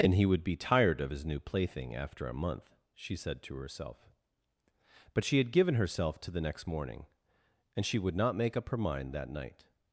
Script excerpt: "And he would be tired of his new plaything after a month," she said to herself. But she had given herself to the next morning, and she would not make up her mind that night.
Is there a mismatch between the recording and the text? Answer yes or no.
no